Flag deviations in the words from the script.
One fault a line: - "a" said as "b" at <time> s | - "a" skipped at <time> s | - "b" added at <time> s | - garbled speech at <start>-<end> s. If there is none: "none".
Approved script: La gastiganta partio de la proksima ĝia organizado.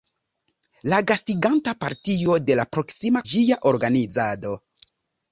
none